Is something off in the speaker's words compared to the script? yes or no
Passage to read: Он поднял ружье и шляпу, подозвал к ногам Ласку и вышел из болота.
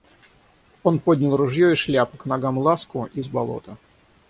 yes